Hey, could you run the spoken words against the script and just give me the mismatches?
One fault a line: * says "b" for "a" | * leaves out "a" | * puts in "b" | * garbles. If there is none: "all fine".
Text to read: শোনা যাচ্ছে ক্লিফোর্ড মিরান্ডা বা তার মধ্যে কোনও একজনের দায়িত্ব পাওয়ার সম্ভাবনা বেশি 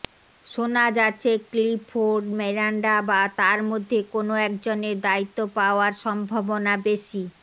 all fine